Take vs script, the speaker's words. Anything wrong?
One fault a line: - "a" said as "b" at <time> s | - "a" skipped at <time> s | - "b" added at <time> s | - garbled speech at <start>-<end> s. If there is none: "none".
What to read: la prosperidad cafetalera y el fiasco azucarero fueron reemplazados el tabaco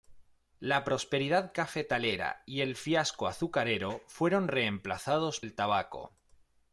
none